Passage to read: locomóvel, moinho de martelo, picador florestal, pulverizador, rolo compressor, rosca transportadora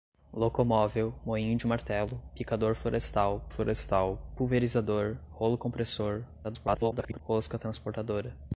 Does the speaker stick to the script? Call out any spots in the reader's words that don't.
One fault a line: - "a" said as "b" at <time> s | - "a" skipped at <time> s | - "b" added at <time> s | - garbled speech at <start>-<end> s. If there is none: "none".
- "florestal" added at 3.5 s
- garbled speech at 6.4-7.2 s